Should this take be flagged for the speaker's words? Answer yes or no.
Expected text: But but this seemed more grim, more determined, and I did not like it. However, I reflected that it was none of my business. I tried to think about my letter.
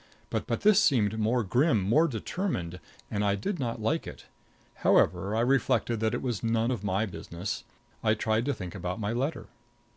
no